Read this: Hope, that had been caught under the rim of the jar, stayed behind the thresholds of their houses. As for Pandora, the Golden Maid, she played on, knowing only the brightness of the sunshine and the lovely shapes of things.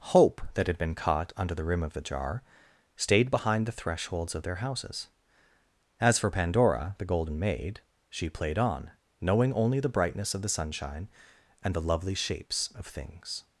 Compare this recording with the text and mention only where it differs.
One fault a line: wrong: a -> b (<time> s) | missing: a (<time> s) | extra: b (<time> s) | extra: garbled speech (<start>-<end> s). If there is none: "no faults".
no faults